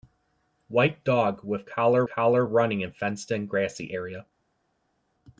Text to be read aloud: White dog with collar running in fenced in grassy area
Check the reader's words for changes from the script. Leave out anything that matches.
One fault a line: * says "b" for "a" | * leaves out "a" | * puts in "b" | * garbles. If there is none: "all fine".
* puts in "collar"